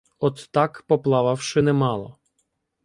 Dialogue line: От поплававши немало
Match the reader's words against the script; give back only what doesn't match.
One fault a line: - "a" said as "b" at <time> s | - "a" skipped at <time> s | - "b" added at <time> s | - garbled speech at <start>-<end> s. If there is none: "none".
- "так" added at 0.5 s